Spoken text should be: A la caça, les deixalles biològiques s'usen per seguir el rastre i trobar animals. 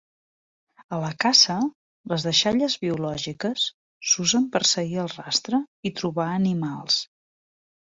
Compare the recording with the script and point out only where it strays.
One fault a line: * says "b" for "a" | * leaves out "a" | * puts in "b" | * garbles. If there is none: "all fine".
all fine